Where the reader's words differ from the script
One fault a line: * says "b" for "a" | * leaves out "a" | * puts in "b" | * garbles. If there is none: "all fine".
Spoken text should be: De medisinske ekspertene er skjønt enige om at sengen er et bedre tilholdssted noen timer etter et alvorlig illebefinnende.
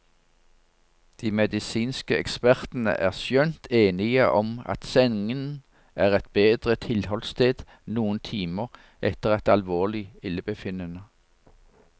all fine